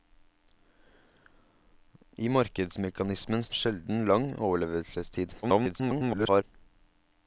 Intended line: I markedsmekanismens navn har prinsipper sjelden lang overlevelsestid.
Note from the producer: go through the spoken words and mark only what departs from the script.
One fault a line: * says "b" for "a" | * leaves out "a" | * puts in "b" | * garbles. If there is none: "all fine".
* leaves out "navn har prinsipper"
* garbles